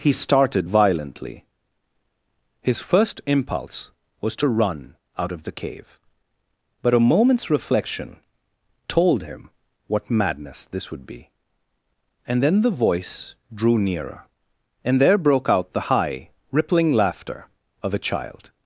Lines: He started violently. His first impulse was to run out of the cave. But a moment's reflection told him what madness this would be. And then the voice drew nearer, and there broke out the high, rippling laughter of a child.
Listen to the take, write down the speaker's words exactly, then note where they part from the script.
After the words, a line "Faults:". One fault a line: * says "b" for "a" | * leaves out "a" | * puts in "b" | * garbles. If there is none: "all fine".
He started violently. His first impulse was to run out of the cave. But a moment's reflection told him what madness this would be. And then the voice drew nearer, and there broke out the high, rippling laughter of a child.
Faults:
all fine